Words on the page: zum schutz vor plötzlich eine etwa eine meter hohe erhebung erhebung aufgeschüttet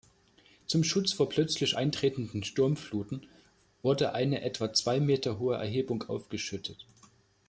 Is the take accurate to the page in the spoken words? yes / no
no